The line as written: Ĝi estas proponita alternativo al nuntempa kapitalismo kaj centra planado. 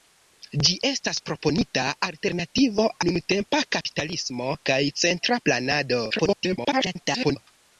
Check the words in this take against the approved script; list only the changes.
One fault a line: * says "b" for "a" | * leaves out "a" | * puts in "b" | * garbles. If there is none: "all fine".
* leaves out "al"
* garbles